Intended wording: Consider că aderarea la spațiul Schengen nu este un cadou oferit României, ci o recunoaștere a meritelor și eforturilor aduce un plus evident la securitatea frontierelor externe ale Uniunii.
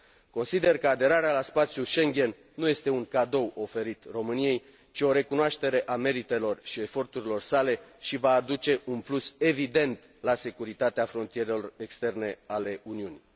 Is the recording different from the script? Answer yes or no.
yes